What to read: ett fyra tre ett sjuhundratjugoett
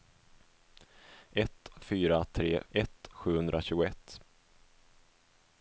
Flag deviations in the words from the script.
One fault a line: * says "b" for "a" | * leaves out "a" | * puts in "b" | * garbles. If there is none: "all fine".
all fine